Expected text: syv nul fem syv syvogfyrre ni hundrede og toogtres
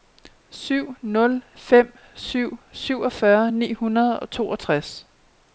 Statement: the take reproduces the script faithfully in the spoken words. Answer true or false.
true